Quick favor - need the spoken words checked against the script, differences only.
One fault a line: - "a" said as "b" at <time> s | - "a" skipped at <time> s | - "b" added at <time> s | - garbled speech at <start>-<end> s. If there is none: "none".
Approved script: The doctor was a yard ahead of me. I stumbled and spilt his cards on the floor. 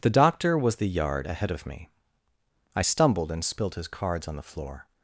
- "a" said as "the" at 0.8 s